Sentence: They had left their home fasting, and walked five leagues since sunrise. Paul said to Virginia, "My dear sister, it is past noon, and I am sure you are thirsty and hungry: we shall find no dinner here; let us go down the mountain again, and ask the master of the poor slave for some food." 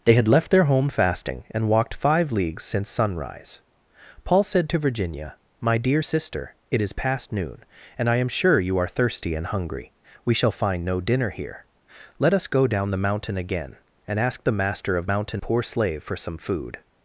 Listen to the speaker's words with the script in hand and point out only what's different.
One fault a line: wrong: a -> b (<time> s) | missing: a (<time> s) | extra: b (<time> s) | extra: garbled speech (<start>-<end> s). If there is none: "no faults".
wrong: the -> mountain (15.1 s)